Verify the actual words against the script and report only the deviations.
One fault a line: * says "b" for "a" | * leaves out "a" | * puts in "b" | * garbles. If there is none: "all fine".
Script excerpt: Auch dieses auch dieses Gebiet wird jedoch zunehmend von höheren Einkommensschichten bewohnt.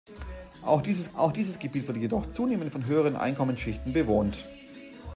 all fine